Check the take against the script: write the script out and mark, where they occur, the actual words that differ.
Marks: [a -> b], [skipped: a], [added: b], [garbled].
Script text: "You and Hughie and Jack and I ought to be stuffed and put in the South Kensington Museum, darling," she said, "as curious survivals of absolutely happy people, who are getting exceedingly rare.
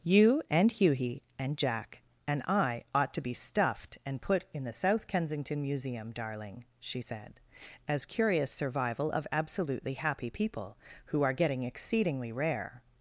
"You and Hughie and Jack and I ought to be stuffed and put in the South Kensington Museum, darling," she said, "as curious [survivals -> survival] of absolutely happy people, who are getting exceedingly rare.